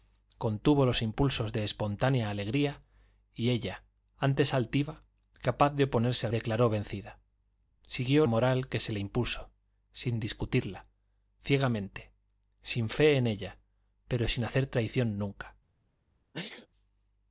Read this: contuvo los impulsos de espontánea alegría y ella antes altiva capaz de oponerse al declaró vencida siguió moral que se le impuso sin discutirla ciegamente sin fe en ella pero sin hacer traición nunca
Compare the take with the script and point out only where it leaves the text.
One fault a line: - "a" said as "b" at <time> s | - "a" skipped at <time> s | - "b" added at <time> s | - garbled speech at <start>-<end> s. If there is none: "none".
none